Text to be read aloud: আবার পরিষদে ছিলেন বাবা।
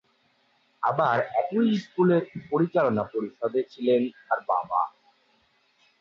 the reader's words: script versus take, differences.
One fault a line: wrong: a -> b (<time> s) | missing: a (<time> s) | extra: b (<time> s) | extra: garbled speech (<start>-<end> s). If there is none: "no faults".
extra: একই স্কুলের পরিচালনা (1.4 s)
extra: তার (4.2 s)